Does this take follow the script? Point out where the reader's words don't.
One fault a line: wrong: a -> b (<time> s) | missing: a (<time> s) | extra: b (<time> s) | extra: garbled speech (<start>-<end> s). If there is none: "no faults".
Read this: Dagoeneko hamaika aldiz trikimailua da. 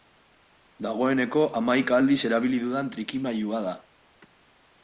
extra: erabili dudan (2.3 s)